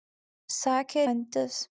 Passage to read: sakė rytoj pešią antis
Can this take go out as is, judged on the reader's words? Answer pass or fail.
fail